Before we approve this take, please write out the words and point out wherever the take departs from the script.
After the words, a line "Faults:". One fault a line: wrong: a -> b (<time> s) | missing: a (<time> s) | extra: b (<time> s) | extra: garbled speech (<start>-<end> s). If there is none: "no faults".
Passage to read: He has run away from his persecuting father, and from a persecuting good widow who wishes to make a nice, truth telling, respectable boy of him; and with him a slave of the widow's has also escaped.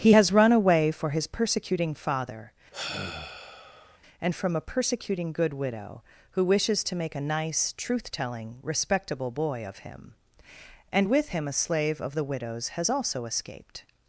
He has run away for his persecuting father, and from a persecuting good widow who wishes to make a nice, truth telling, respectable boy of him; and with him a slave of the widow's has also escaped.
Faults:
wrong: from -> for (0.9 s)